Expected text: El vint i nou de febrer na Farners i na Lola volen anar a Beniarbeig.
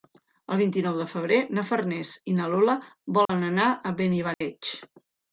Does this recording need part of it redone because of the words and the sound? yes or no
yes